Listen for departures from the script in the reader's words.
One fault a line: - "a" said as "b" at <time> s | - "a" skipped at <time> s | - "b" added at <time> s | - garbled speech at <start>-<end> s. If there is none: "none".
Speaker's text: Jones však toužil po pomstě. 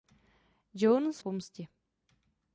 - "však toužil po" skipped at 1.2 s